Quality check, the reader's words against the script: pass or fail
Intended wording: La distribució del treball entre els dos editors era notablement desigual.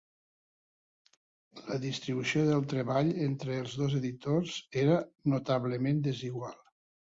pass